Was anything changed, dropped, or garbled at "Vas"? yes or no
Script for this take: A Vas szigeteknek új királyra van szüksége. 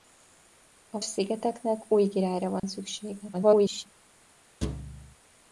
yes